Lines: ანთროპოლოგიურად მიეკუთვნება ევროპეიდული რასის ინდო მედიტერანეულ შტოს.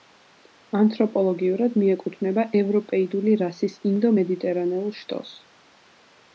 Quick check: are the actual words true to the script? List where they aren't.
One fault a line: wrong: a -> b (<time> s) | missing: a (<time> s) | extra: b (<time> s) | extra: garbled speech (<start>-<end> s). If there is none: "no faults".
no faults